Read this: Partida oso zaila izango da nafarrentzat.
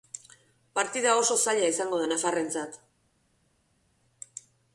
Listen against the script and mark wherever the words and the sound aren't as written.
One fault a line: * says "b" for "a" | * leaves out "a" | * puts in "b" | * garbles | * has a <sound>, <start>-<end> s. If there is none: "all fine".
all fine